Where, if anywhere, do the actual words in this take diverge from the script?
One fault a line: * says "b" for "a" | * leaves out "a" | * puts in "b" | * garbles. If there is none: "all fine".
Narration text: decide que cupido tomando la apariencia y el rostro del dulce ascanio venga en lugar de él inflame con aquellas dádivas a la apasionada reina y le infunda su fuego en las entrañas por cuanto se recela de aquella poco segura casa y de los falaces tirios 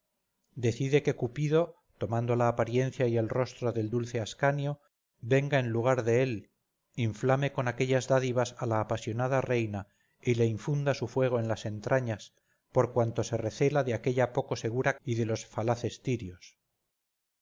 * leaves out "casa"